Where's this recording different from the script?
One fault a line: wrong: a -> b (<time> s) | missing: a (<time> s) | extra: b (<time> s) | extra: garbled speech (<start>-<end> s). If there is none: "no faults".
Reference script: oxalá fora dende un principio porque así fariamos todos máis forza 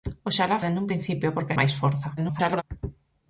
missing: fora (0.6 s)
missing: así fariamos todos (1.5 s)
extra: garbled speech (2.2-2.6 s)